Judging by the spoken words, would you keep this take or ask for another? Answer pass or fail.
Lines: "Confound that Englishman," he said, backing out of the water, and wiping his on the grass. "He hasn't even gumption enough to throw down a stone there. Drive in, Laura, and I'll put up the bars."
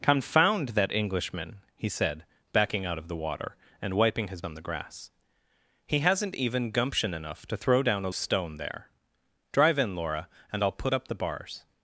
pass